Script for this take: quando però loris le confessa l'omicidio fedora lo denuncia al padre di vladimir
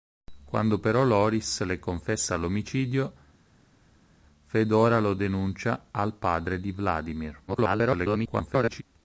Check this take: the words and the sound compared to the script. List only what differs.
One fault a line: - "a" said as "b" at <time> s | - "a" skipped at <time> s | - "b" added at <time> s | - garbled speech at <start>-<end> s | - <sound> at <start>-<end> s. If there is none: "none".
- garbled speech at 7.5-8.8 s